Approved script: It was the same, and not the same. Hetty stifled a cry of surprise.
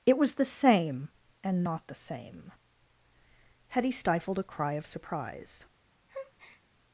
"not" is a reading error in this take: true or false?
false